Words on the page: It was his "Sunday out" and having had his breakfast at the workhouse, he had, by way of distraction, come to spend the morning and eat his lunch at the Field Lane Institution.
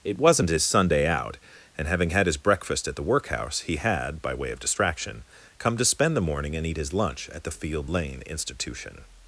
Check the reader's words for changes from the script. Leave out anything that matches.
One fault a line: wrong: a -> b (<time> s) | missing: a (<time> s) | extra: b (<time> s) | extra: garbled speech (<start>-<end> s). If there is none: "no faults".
wrong: was -> wasn't (0.2 s)